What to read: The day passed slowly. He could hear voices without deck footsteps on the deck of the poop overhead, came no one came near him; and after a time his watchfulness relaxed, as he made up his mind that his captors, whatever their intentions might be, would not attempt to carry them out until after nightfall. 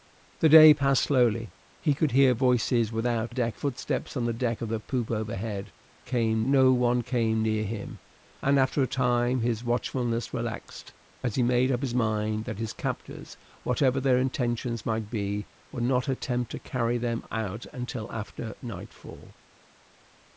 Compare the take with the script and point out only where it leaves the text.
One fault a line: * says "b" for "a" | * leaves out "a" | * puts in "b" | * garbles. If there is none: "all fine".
all fine